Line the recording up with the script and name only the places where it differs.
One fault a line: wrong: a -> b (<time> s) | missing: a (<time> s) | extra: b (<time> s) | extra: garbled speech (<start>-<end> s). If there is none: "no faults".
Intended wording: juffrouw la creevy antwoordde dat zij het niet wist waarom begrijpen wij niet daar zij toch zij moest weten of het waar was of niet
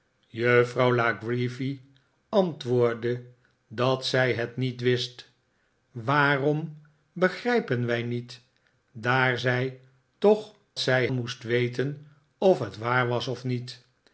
no faults